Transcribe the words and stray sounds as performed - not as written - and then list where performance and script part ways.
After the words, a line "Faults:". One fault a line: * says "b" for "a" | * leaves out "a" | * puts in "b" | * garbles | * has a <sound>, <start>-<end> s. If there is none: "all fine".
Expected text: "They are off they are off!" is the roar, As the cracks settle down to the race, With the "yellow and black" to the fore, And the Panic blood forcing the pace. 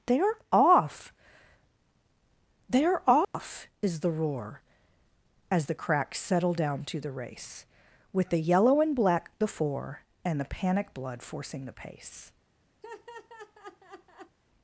"They are off they are off!" is the roar, As the cracks settle down to the race, With the "yellow and black" the fore, And the Panic blood forcing the pace.
Faults:
* has a dropout, 3.2-3.3 s
* leaves out "to"
* has a laugh, 12.8-14.4 s